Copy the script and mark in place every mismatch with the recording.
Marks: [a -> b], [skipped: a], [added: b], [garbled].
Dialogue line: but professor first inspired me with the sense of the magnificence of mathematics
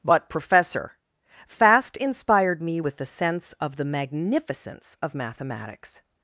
but professor [first -> fast] inspired me with the sense of the magnificence of mathematics